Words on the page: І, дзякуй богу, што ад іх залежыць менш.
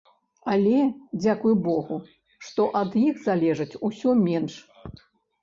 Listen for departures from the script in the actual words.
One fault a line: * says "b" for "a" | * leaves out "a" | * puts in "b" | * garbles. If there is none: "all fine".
* says "Але" for "І"
* puts in "усё"